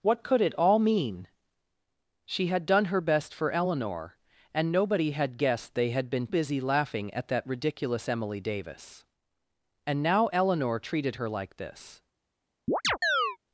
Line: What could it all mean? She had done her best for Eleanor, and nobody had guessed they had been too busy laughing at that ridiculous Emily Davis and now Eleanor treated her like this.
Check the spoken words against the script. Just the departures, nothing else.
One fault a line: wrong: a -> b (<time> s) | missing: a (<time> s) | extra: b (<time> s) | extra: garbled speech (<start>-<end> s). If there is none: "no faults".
missing: too (6.3 s)